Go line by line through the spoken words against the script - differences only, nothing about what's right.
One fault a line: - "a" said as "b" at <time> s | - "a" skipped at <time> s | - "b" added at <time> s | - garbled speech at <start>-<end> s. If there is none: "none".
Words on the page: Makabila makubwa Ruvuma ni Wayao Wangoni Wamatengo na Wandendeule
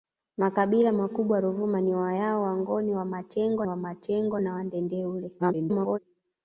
- "Wamatengo" added at 3.7 s
- garbled speech at 5.4-6.0 s